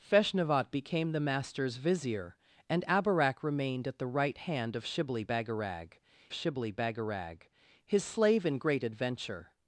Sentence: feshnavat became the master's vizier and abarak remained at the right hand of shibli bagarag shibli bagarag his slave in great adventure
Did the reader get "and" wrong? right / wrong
right